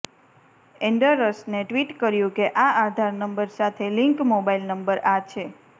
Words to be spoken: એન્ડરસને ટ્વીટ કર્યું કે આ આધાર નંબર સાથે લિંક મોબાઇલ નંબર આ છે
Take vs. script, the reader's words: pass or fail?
pass